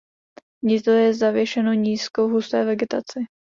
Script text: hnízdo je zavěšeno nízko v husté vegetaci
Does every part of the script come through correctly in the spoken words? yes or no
yes